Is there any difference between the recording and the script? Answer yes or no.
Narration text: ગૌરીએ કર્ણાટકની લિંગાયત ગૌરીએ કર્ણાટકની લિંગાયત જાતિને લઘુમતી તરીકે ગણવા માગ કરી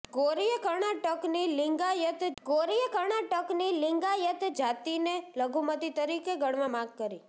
no